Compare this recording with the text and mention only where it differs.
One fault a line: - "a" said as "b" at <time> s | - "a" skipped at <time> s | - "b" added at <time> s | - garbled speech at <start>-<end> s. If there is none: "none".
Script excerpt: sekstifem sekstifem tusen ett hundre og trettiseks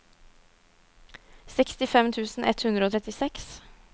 - "sekstifem" skipped at 2.1 s